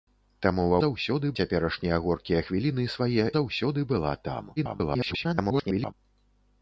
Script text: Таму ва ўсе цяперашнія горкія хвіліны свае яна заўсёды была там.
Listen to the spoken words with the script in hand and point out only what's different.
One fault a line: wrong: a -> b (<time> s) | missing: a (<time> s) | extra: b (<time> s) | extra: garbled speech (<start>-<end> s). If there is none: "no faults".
wrong: ўсе -> заўсёды (0.8 s)
missing: яна (3.3 s)
extra: garbled speech (4.6-5.9 s)